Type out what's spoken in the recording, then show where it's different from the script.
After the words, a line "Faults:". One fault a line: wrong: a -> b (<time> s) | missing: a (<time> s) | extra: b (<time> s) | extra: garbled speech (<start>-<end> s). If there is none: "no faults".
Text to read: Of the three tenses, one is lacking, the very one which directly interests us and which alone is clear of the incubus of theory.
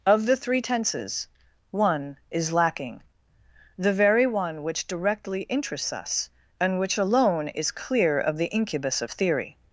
Of the three tenses, one is lacking, the very one which directly interests us and which alone is clear of the incubus of theory.
Faults:
no faults